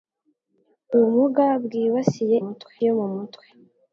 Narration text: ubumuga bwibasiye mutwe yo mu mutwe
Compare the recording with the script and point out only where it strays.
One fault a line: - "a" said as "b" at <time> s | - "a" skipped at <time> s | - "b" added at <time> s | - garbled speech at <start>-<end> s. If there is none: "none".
none